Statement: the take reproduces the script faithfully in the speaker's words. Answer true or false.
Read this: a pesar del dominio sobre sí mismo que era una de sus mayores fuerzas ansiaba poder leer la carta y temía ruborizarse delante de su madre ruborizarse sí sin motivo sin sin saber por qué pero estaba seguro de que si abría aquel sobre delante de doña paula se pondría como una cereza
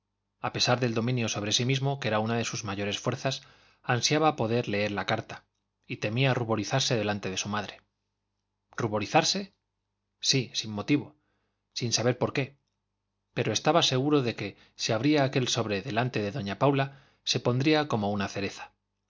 false